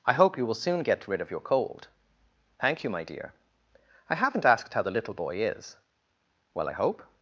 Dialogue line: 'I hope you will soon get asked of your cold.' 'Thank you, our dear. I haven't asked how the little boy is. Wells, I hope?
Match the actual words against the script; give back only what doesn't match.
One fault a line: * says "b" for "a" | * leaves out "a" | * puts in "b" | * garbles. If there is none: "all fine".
* says "rid" for "asked"
* says "my" for "our"
* says "Well" for "Wells"